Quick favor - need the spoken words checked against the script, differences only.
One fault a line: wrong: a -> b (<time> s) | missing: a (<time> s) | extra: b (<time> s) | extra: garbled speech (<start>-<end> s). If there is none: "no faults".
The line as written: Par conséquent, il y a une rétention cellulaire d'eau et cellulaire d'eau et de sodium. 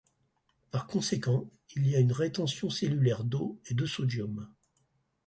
missing: cellulaire d'eau et (3.8 s)